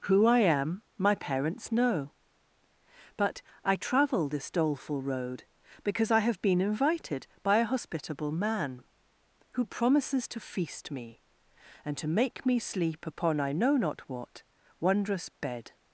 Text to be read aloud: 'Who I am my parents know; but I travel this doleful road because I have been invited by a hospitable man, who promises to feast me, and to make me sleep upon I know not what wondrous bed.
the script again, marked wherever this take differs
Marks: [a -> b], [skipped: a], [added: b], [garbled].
'Who I am my parents know; but I travel this doleful road because I have been invited by a hospitable man, who promises to feast me, and to make me sleep upon I know not what wondrous bed.